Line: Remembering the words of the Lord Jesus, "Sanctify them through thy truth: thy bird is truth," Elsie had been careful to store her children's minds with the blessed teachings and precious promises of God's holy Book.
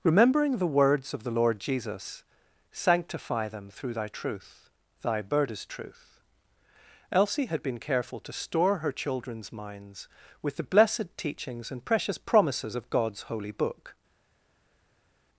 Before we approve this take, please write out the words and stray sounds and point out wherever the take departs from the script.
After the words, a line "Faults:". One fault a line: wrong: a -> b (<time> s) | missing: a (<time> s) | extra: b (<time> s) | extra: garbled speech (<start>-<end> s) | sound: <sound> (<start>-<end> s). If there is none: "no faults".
Remembering the words of the Lord Jesus, "Sanctify them through thy truth: thy bird is truth," Elsie had been careful to store her children's minds with the blessed teachings and precious promises of God's holy Book.
Faults:
no faults